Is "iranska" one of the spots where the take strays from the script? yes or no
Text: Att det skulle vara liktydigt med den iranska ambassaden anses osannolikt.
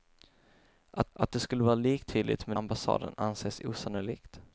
yes